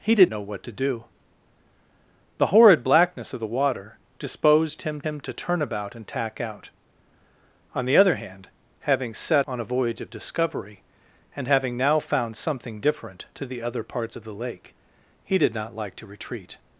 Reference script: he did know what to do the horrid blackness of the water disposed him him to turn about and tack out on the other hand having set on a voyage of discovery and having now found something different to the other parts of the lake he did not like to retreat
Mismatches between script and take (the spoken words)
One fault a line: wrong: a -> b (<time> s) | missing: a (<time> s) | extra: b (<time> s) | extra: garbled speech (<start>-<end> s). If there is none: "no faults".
no faults